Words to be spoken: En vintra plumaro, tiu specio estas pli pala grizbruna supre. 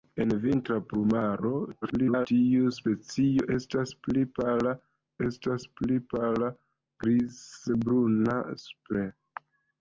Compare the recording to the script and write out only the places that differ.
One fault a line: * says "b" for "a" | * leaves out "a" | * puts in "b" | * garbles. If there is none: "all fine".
* garbles
* puts in "estas pli pala"